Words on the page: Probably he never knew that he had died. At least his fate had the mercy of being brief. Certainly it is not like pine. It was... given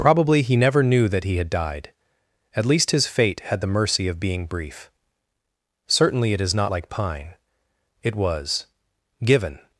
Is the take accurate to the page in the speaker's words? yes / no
yes